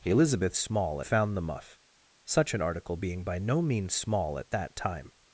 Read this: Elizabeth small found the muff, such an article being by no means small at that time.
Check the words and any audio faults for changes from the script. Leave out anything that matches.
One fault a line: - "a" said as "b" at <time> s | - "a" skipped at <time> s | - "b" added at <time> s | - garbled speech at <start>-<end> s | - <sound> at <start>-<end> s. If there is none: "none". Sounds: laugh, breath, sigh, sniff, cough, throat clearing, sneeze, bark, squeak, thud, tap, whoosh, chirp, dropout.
none